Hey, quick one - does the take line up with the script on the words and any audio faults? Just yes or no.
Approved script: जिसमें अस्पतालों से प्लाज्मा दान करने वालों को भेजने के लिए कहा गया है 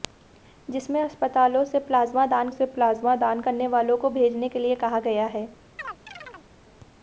no